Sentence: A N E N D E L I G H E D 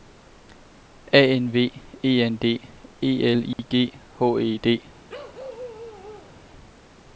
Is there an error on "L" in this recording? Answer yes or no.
no